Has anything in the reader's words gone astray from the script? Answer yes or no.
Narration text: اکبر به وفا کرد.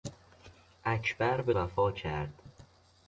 no